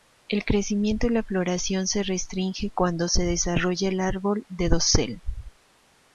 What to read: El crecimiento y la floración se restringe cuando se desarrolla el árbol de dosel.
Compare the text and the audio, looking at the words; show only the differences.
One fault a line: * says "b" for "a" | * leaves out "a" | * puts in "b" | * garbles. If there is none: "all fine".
all fine